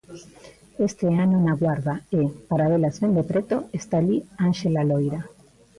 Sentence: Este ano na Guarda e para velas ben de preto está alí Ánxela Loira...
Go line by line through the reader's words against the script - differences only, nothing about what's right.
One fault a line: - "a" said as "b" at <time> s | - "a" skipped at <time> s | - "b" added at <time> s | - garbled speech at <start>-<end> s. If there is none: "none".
none